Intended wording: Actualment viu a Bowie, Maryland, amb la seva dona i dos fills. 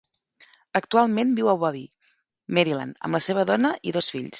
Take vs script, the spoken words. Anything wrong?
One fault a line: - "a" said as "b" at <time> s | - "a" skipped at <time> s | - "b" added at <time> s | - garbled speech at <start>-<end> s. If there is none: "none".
none